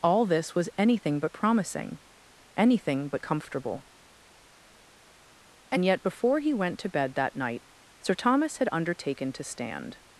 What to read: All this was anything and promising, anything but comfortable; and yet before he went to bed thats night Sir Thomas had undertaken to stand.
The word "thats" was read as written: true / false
false